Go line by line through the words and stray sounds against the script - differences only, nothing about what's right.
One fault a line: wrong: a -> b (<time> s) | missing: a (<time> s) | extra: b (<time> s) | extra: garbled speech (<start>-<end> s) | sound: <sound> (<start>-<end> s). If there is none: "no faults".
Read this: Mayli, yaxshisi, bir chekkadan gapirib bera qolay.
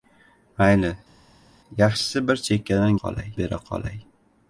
wrong: gapirib -> qolay (3.0 s)